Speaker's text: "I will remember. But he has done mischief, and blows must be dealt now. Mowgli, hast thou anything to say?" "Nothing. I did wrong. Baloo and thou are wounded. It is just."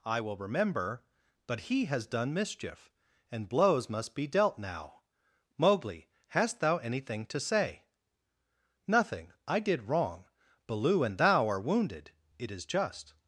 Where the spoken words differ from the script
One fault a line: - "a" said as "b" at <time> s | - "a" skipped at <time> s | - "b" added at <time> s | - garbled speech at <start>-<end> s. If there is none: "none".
none